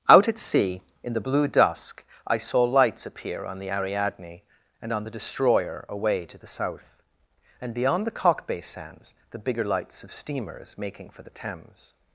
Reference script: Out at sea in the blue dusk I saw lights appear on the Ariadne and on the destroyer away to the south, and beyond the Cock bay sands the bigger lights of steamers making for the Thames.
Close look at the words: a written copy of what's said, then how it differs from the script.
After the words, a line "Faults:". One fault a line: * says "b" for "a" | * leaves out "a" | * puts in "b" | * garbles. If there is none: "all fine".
Out at sea in the blue dusk I saw lights appear on the Ariadne and on the destroyer away to the south, and beyond the Cock bay sands the bigger lights of steamers making for the Thames.
Faults:
all fine